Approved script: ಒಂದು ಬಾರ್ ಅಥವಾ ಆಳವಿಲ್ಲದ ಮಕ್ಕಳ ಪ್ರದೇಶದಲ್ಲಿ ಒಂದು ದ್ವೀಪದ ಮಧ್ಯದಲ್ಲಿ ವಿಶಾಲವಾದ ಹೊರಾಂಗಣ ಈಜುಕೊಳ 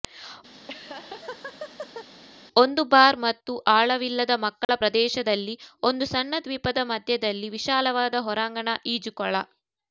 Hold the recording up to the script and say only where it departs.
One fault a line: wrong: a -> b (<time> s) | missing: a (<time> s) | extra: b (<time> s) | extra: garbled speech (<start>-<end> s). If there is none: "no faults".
wrong: ಅಥವಾ -> ಮತ್ತು (3.2 s)
extra: ಸಣ್ಣ (6.1 s)